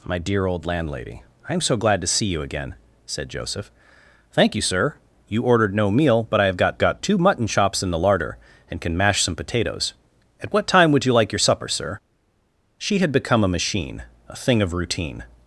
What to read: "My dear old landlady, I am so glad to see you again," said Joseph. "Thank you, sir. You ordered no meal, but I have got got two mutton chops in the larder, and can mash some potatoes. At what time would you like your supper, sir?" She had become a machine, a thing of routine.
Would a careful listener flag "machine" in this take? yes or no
no